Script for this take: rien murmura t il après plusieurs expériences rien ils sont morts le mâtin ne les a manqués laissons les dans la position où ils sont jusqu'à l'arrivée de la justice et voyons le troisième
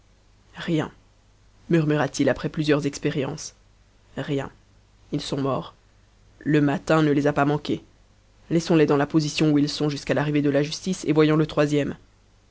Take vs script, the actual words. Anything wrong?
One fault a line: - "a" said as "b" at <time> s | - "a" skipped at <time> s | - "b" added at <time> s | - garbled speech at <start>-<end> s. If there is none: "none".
- "pas" added at 7.3 s